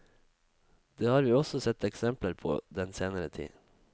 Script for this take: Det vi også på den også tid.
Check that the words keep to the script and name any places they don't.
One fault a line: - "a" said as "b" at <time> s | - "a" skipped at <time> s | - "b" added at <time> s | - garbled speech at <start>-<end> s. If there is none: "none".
- "har" added at 1.1 s
- "sett eksempler" added at 1.6 s
- "også" said as "senere" at 3.0 s